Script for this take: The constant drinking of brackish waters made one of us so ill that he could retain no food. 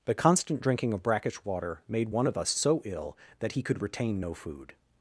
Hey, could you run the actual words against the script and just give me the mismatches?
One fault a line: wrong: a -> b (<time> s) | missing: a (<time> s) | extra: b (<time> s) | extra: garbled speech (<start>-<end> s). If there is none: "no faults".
wrong: waters -> water (1.4 s)